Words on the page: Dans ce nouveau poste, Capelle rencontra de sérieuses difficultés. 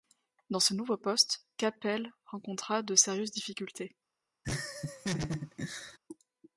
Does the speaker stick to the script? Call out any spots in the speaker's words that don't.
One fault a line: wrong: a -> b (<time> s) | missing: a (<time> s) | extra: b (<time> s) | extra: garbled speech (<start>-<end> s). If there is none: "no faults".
no faults